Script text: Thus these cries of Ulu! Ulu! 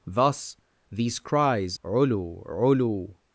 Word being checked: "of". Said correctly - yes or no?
no